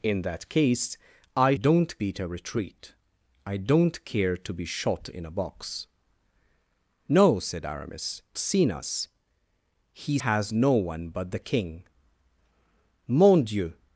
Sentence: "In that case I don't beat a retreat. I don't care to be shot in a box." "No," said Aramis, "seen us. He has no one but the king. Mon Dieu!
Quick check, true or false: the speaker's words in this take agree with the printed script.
true